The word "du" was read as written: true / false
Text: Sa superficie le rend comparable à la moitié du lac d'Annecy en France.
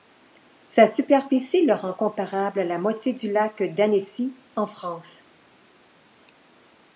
true